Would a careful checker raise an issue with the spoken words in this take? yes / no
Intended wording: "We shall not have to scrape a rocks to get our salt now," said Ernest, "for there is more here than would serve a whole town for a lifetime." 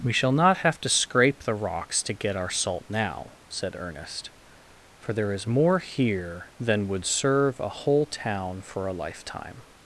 yes